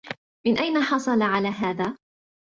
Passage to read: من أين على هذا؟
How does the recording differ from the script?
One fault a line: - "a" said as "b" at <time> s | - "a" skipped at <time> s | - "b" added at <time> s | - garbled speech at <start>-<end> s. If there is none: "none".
- "حصل" added at 0.8 s